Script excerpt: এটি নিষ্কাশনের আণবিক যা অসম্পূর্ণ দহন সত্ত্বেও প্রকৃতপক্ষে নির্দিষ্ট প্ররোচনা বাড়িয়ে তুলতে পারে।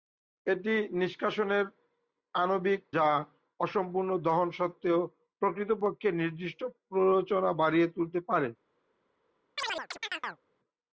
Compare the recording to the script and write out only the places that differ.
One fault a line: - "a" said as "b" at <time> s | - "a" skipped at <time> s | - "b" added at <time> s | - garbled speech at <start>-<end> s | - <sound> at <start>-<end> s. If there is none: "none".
- chirp at 9.6-10.4 s